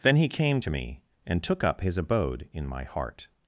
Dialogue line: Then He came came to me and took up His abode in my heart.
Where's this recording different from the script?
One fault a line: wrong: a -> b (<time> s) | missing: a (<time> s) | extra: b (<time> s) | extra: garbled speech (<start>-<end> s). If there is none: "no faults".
missing: came (0.6 s)